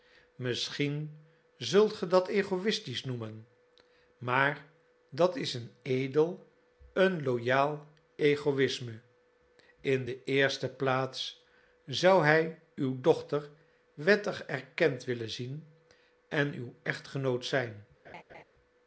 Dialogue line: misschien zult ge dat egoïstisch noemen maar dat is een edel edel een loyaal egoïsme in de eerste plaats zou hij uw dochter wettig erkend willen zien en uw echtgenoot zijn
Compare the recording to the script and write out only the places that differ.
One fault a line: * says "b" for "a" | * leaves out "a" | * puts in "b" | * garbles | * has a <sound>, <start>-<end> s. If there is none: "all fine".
* leaves out "edel"
* has a laugh, 18.0-18.4 s